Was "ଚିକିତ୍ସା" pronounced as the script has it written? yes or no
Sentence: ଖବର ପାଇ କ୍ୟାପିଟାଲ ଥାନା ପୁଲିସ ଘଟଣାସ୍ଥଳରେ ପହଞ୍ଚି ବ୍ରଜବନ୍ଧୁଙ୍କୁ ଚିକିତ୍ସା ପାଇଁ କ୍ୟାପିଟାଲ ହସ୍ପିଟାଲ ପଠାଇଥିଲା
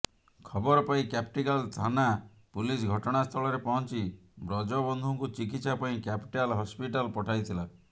yes